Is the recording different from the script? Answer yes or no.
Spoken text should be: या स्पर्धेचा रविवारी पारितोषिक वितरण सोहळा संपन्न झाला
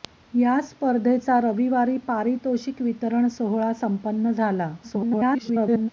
yes